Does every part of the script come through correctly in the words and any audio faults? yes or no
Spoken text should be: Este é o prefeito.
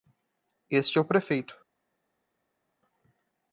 yes